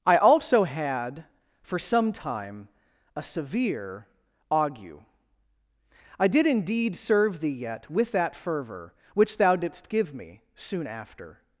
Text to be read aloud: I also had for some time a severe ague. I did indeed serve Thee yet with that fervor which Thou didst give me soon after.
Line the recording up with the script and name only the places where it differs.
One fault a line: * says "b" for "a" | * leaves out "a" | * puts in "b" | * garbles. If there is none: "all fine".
all fine